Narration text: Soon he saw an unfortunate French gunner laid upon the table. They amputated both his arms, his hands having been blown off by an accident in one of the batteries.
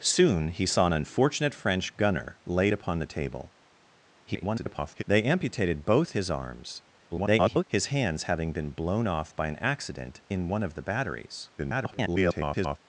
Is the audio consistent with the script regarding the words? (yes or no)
no